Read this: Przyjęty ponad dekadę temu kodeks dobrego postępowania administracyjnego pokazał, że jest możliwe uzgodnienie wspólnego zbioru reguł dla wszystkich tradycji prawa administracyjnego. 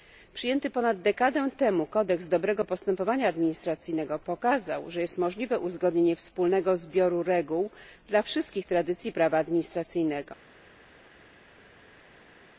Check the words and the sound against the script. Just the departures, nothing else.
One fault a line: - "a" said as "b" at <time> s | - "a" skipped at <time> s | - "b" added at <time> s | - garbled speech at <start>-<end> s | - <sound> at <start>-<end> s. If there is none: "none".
none